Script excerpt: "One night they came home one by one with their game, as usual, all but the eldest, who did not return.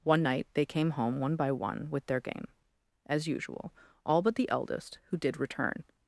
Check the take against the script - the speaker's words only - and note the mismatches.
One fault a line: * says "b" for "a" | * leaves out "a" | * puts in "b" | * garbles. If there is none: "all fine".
* leaves out "not"